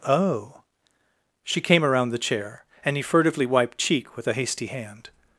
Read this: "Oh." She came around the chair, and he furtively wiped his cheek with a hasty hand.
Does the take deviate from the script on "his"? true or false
true